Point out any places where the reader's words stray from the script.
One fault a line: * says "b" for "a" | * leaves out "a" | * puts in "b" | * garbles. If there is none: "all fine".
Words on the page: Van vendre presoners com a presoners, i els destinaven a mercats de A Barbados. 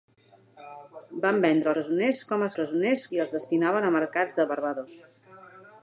all fine